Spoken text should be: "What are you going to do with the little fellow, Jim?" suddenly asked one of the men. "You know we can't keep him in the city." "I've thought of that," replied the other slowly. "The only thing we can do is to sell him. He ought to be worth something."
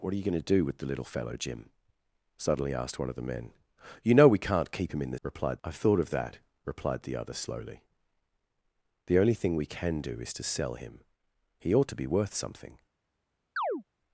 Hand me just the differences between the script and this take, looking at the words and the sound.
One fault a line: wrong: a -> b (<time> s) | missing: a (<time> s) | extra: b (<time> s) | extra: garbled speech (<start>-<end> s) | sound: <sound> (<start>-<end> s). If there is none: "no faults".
wrong: city -> replied (5.2 s)
sound: chirp (13.6-13.8 s)